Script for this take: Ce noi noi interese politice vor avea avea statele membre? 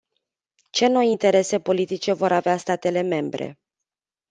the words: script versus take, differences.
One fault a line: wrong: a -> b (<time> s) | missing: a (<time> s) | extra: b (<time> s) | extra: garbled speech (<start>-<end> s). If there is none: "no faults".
missing: noi (1.1 s)
missing: avea (2.6 s)